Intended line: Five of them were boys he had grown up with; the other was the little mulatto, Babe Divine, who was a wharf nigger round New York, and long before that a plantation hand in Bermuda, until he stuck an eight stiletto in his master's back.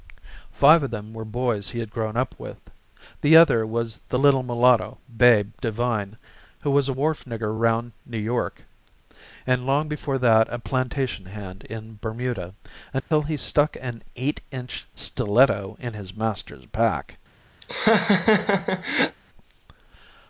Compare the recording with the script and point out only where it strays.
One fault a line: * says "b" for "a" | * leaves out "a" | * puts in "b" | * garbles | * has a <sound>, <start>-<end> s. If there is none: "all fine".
* has a dropout, 13.0-13.1 s
* puts in "inch"
* has a laugh, 17.6-19.2 s